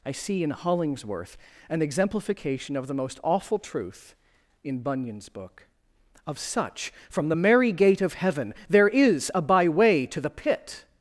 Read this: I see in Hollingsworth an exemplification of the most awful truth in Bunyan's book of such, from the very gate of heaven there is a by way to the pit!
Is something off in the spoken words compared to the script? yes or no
yes